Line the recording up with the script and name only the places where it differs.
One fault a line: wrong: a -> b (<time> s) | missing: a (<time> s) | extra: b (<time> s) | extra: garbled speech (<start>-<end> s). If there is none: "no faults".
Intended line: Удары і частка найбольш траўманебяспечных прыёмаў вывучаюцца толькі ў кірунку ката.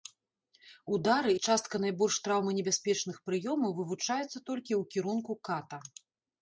no faults